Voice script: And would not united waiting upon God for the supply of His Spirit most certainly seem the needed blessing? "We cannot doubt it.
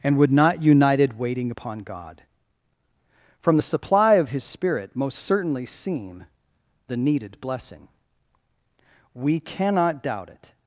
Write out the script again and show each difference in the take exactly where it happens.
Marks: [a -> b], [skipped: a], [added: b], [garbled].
And would not united waiting upon God [for -> from] the supply of His Spirit most certainly seem the needed blessing? "We cannot doubt it.